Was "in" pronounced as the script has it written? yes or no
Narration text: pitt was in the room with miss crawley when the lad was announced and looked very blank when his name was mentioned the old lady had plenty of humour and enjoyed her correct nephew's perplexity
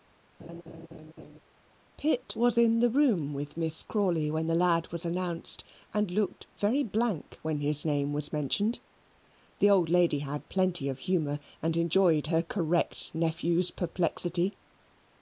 yes